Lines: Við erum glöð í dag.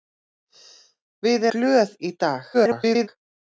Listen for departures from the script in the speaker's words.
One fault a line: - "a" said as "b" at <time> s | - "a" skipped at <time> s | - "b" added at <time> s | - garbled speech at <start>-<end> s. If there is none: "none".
- "erum" skipped at 1.4 s
- garbled speech at 2.5-3.1 s